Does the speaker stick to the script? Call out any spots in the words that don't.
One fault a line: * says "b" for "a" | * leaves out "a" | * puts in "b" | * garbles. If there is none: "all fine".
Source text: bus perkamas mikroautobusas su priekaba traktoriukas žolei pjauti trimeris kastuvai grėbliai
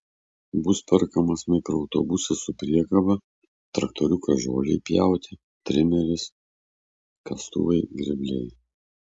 all fine